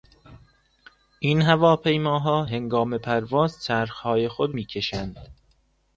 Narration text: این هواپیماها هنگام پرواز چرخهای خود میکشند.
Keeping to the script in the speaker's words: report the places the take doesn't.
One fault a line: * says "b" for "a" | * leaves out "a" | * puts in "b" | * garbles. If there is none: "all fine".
all fine